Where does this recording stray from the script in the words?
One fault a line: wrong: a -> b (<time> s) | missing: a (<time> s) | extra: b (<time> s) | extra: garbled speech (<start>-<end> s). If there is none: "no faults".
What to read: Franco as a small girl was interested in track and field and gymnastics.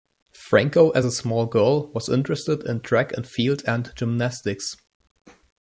no faults